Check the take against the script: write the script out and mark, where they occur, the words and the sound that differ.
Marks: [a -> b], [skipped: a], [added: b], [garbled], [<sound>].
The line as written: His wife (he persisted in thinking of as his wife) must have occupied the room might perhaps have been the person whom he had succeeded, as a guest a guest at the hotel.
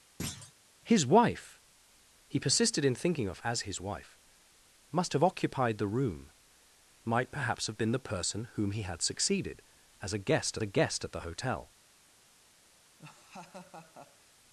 [thud] His wife (he persisted in thinking of as his wife) must have occupied the room might perhaps have been the person whom he had succeeded, as a guest a guest at the hotel. [laugh]